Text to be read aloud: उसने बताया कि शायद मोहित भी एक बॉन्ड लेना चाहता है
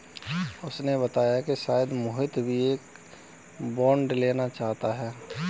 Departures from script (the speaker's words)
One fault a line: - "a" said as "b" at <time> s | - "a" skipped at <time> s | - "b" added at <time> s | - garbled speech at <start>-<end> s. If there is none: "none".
none